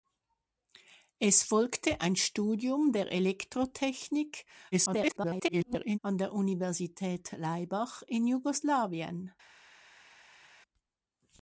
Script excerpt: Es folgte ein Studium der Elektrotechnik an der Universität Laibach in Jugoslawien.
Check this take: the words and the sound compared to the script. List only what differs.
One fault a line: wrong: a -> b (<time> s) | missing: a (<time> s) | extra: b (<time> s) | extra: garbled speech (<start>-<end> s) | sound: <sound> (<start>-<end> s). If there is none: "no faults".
extra: garbled speech (4.7-6.0 s)